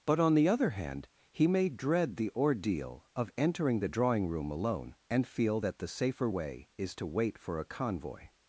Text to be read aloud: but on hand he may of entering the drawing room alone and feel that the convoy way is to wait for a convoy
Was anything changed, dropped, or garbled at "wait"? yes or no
no